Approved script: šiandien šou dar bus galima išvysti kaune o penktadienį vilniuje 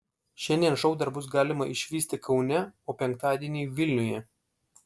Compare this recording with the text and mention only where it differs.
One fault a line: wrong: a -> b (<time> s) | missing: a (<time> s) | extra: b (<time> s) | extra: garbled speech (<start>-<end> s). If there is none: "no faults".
no faults